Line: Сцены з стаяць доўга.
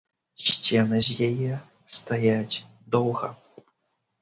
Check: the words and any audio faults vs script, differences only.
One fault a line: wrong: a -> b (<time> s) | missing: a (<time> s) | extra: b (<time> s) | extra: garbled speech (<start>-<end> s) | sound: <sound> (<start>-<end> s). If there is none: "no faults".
extra: яе (1.3 s)